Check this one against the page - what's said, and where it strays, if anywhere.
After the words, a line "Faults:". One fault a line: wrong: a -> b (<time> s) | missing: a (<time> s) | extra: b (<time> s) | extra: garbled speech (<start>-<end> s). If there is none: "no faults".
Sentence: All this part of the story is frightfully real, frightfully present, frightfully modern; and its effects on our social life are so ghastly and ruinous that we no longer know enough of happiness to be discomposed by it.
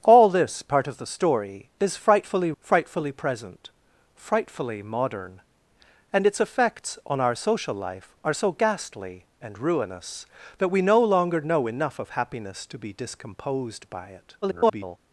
All this part of the story is frightfully frightfully present, frightfully modern; and its effects on our social life are so ghastly and ruinous that we no longer know enough of happiness to be discomposed by it. [garbled]
Faults:
missing: real (2.5 s)
extra: garbled speech (14.4-15.0 s)